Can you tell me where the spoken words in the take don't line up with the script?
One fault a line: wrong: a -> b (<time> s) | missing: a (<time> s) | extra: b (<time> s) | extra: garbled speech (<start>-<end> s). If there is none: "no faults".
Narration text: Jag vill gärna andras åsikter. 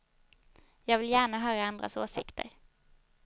extra: höra (1.4 s)